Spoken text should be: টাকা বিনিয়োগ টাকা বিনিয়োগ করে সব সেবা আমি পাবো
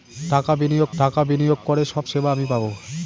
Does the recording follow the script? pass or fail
pass